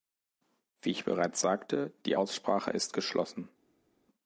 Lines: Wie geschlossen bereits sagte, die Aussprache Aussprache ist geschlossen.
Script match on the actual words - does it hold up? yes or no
no